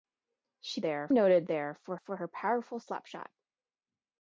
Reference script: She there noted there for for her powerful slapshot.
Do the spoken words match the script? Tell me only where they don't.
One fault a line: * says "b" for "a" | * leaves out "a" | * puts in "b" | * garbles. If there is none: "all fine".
all fine